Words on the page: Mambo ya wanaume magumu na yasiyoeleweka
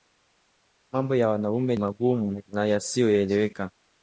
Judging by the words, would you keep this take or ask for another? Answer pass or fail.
pass